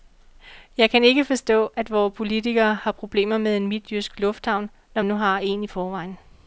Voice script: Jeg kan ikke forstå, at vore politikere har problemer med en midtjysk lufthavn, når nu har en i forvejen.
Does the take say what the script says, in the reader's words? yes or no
yes